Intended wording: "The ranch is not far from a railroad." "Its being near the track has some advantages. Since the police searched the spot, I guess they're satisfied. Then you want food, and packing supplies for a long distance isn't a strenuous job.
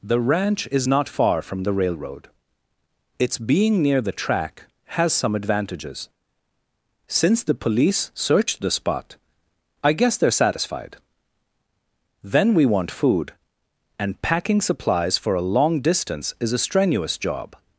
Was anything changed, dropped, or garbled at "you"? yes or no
yes